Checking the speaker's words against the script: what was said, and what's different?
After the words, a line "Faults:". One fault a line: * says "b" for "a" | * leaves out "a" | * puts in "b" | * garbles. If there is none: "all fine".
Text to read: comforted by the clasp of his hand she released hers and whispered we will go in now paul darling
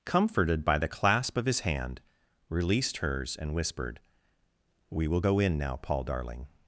comforted by the clasp of his hand released hers and whispered we will go in now paul darling
Faults:
* leaves out "she"